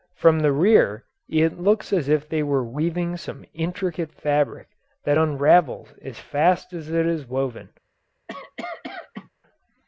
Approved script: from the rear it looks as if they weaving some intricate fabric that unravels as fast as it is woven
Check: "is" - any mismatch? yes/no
no